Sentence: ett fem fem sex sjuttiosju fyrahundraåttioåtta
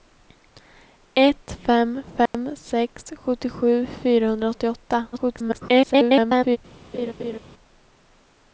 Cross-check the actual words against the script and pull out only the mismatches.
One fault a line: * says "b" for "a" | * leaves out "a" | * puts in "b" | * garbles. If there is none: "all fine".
* garbles